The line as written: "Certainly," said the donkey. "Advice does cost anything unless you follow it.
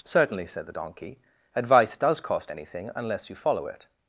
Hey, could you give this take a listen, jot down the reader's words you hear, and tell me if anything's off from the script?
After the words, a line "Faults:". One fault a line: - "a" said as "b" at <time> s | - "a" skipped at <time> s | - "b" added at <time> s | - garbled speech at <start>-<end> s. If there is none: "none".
"Certainly," said the donkey. "Advice does cost anything unless you follow it.
Faults:
none